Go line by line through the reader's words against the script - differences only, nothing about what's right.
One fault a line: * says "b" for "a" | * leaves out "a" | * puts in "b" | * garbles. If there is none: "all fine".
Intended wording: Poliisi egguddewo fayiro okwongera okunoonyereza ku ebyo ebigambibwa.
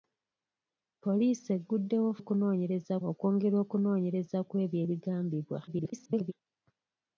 * says "okunoonyereza" for "fayiro"
* garbles